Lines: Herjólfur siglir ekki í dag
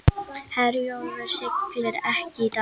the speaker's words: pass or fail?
pass